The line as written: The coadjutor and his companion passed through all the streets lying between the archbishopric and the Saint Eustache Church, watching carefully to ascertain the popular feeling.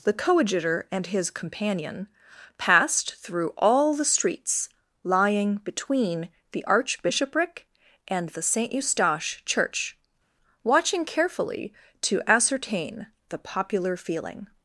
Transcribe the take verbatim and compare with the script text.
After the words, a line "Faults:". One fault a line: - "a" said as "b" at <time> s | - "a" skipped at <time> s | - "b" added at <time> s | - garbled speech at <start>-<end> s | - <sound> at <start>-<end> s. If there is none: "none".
The coadjutor and his companion passed through all the streets lying between the archbishopric and the Saint Eustache Church, watching carefully to ascertain the popular feeling.
Faults:
none